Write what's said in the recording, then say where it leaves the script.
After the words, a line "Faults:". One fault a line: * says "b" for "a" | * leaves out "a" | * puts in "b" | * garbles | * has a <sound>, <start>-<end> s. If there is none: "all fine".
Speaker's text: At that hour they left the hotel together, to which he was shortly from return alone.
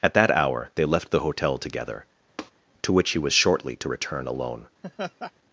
At that hour they left the hotel together, to which he was shortly to return alone.
Faults:
* has a tap, 2.4-2.5 s
* says "to" for "from"
* has a laugh, 4.8-5.3 s